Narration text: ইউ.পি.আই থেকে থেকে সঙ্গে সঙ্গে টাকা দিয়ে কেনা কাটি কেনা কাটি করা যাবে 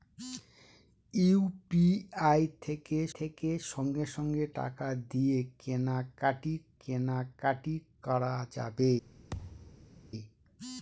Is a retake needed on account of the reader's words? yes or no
no